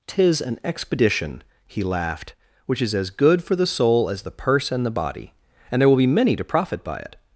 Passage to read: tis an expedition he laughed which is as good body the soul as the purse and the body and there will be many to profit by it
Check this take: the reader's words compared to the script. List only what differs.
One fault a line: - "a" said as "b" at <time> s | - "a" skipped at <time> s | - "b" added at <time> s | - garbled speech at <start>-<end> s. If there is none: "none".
- "body" said as "for" at 3.4 s